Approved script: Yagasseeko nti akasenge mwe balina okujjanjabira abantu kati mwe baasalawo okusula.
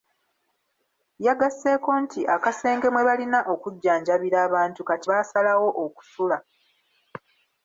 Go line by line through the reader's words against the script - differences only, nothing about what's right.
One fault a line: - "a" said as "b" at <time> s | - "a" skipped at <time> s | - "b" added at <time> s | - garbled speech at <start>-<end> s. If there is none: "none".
- "mwe" skipped at 5.1 s